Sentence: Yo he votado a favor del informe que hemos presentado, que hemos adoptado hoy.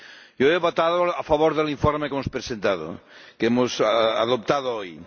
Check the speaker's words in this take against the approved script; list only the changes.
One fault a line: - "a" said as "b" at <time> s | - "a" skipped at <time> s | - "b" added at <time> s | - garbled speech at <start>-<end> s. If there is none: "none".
none